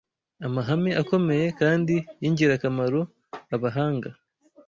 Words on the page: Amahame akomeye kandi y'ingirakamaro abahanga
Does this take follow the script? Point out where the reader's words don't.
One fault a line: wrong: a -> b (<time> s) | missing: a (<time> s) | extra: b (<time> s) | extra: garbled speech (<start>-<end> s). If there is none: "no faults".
no faults